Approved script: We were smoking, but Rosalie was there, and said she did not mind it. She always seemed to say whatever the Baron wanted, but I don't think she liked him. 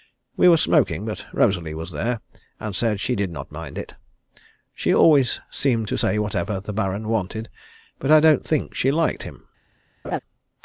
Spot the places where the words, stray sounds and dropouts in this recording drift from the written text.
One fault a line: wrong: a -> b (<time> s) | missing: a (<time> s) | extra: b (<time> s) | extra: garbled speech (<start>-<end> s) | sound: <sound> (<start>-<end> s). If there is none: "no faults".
sound: laugh (10.0-10.2 s)